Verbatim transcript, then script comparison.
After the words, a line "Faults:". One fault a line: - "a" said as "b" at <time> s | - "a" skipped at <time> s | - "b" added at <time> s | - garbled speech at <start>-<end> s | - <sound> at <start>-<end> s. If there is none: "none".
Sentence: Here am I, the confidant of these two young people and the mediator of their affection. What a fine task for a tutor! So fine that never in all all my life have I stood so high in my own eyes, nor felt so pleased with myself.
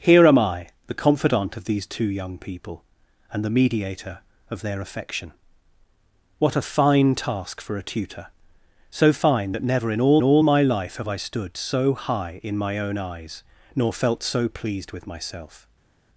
Here am I, the confidant of these two young people and the mediator of their affection. What a fine task for a tutor! So fine that never in all all my life have I stood so high in my own eyes, nor felt so pleased with myself.
Faults:
none